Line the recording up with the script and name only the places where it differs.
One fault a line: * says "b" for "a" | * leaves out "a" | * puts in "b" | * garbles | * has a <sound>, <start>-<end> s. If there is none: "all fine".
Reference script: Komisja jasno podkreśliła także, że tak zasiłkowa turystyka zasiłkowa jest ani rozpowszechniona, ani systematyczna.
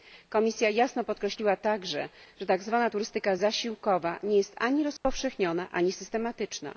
* says "zwana" for "zasiłkowa"
* puts in "nie"
* has a dropout, 5.0-5.1 s